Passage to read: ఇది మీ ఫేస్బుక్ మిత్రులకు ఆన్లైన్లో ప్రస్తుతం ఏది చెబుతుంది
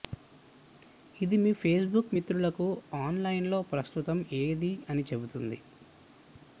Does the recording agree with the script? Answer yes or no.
no